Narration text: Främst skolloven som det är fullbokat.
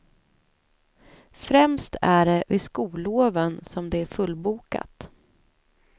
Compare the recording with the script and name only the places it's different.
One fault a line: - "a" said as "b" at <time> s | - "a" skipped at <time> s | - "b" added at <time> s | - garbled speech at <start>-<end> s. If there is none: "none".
- "är det vid" added at 2.0 s